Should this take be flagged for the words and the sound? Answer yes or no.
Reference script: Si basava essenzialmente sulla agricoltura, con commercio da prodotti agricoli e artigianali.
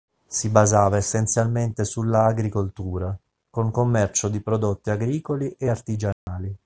yes